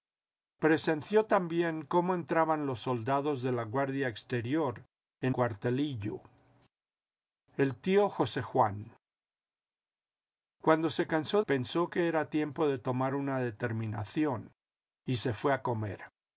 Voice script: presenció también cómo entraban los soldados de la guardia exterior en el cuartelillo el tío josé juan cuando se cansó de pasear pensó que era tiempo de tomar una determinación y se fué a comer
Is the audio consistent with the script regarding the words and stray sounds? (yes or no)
no